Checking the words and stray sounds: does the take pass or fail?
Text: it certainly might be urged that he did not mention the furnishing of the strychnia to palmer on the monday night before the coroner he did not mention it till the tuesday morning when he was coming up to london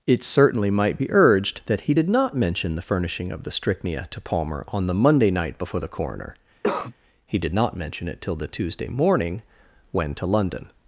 fail